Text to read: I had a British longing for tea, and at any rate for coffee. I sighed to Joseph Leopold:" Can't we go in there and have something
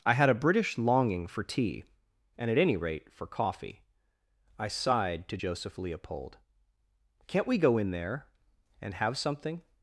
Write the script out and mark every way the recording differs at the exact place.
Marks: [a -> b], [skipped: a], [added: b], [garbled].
I had a British longing for tea, and at any rate for coffee. I sighed to Joseph Leopold:" Can't we go in there and have something